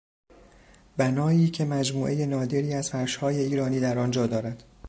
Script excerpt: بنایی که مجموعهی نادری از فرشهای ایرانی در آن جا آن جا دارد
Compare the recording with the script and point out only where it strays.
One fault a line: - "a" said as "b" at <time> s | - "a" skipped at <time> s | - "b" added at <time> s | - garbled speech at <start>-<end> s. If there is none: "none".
- "آن جا" skipped at 4.3 s